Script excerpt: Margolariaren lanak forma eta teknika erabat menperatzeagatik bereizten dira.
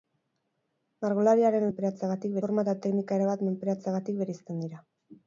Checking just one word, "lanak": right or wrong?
wrong